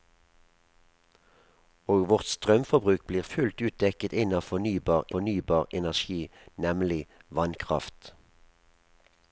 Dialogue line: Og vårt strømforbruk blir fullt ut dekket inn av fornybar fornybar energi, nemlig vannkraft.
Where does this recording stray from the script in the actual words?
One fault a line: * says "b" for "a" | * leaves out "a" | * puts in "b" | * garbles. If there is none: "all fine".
all fine